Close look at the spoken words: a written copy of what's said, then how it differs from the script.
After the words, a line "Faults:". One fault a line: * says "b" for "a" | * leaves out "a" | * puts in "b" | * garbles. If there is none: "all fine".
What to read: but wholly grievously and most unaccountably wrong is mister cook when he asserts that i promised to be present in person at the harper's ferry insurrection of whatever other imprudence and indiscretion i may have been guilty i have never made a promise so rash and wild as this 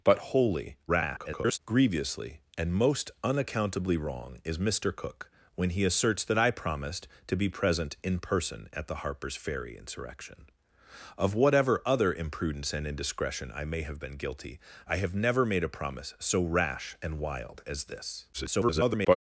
but wholly [garbled] grievously and most unaccountably wrong is mister cook when he asserts that i promised to be present in person at the harper's ferry insurrection of whatever other imprudence and indiscretion i may have been guilty i have never made a promise so rash and wild as this [garbled]
Faults:
* garbles
* garbles